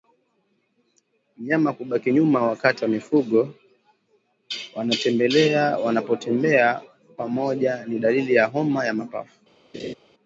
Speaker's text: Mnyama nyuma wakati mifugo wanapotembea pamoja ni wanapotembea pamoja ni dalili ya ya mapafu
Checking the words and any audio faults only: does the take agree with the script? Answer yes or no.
no